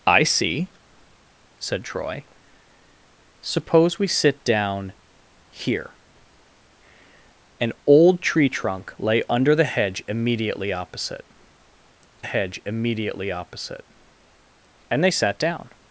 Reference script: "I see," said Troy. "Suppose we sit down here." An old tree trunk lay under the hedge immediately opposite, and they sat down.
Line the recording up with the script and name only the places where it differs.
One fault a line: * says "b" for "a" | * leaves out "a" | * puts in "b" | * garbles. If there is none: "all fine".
* puts in "hedge immediately opposite"